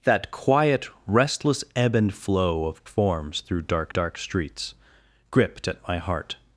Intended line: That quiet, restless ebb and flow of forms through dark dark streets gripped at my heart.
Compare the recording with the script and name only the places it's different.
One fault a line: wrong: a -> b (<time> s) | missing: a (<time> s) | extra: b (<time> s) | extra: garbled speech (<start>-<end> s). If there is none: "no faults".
no faults